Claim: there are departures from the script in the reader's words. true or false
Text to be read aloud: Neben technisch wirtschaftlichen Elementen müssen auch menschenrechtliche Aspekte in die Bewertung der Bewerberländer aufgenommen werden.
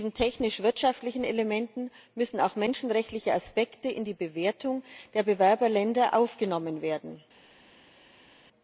false